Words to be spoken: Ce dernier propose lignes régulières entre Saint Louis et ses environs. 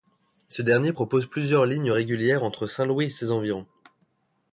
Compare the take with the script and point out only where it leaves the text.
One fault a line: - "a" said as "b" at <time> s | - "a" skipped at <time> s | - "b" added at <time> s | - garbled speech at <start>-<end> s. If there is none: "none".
- "plusieurs" added at 1.3 s